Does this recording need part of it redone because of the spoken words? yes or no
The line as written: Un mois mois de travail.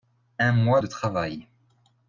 yes